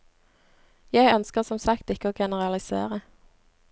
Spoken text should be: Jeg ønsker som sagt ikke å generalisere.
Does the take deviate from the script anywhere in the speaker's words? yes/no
no